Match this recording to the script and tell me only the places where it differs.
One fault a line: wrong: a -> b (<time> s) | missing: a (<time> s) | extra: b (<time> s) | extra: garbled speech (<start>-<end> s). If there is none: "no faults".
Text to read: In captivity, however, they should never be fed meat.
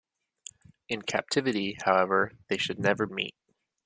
missing: be fed (3.1 s)